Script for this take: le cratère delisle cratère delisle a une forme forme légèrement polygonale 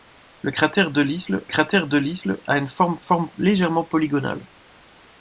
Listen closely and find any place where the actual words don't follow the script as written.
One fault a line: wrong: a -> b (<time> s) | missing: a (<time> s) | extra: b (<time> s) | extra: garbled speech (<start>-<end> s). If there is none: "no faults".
no faults